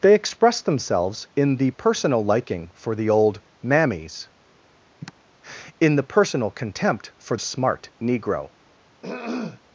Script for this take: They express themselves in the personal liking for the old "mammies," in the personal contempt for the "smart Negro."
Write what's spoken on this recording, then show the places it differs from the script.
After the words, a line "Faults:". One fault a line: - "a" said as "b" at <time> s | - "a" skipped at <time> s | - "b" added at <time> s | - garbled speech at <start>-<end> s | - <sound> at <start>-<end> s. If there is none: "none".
They express themselves in the personal liking for the old "mammies," in the personal contempt for "smart Negro."
Faults:
- sigh at 5.0-5.1 s
- "the" skipped at 7.4 s
- throat clearing at 9.0-9.6 s